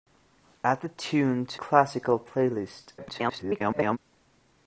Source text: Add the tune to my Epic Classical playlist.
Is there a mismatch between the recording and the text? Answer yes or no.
yes